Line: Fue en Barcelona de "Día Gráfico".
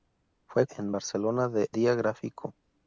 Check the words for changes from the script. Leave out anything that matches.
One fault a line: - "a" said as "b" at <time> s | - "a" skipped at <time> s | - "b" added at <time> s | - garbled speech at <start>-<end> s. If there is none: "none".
none